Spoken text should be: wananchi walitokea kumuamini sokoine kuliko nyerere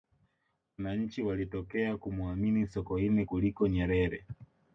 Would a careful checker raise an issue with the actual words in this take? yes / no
no